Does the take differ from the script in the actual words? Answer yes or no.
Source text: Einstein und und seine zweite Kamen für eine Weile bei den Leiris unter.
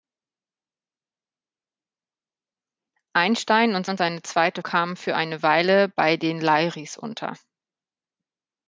no